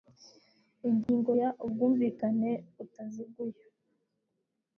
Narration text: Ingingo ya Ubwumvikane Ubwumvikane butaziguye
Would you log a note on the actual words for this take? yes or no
yes